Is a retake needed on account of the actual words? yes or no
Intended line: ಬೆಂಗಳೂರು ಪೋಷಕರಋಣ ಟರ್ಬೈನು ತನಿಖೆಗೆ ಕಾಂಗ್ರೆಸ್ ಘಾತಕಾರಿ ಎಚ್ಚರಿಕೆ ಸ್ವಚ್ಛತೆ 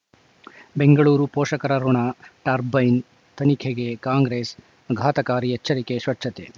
no